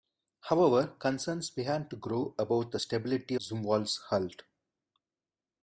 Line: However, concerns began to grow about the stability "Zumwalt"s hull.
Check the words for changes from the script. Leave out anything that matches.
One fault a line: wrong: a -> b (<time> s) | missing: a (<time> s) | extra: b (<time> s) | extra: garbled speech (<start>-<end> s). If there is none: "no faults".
no faults